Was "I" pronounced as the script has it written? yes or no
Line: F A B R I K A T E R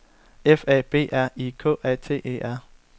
yes